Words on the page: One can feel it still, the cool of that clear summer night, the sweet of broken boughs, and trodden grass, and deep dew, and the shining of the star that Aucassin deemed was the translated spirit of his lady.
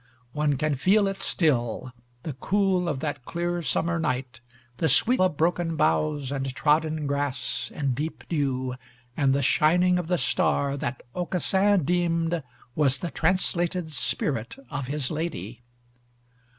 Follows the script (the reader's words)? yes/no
yes